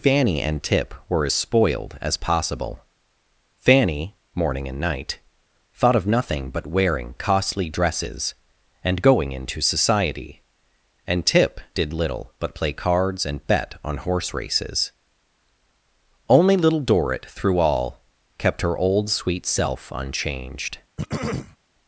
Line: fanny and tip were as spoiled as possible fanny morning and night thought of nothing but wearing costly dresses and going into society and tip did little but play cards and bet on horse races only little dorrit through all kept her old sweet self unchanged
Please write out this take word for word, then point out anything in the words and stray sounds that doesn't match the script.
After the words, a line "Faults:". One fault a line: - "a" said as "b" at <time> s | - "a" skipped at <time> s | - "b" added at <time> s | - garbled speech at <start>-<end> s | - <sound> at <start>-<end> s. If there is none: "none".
fanny and tip were as spoiled as possible fanny morning and night thought of nothing but wearing costly dresses and going into society and tip did little but play cards and bet on horse races only little dorrit through all kept her old sweet self unchanged
Faults:
- throat clearing at 21.0-21.6 s